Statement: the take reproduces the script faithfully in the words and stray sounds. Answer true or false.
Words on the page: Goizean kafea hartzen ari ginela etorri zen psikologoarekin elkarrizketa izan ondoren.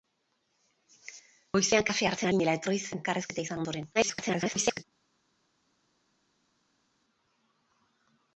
false